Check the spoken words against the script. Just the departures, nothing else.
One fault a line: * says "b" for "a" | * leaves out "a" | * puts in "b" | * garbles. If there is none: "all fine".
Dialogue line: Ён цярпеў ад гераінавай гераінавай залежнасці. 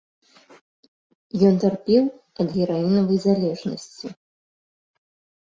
* leaves out "гераінавай"